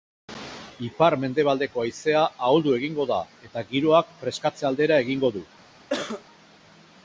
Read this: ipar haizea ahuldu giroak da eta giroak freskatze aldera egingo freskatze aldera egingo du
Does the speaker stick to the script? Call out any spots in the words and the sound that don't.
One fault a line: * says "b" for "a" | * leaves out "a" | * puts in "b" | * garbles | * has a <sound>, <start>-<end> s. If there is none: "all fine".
* puts in "mendebaldeko"
* says "egingo" for "giroak"
* leaves out "freskatze aldera egingo"
* has a cough, 5.9-6.2 s